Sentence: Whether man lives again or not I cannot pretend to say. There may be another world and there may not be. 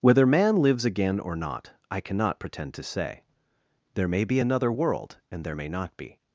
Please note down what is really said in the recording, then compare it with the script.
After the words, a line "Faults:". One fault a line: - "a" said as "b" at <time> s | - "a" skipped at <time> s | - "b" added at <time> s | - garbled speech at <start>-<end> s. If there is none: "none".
Whether man lives again or not I cannot pretend to say. There may be another world and there may not be.
Faults:
none